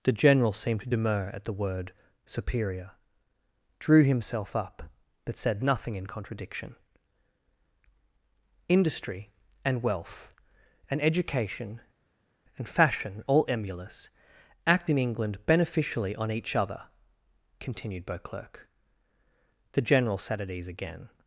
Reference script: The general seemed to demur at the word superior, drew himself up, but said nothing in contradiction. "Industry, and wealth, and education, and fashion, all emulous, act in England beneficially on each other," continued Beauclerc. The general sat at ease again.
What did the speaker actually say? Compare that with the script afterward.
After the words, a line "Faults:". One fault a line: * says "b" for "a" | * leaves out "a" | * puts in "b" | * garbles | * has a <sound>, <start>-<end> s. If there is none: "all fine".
The general seemed to demur at the word superior, drew himself up, but said nothing in contradiction. "Industry, and wealth, and education, and fashion, all emulous, act in England beneficially on each other," continued Beauclerc. The general sat at ease again.
Faults:
all fine